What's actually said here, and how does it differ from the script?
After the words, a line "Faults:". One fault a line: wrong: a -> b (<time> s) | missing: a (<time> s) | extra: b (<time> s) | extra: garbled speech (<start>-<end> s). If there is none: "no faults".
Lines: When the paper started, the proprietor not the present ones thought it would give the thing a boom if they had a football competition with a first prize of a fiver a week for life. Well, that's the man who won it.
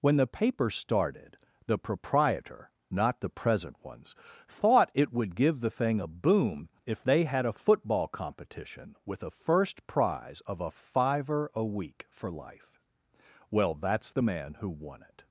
When the paper started, the proprietor not the present ones thought it would give the thing a boom if they had a football competition with a first prize of a fiver a week for life. Well, that's the man who won it.
Faults:
no faults